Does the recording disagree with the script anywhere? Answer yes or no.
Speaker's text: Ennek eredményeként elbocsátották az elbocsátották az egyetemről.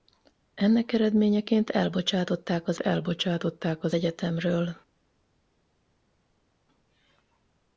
no